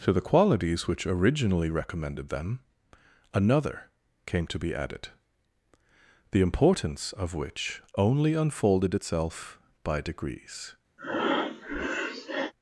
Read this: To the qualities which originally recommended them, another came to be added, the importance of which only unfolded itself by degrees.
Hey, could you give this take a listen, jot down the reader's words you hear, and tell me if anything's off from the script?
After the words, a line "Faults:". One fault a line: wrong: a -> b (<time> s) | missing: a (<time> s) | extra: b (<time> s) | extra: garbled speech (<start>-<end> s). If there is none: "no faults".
To the qualities which originally recommended them, another came to be added, the importance of which only unfolded itself by degrees.
Faults:
no faults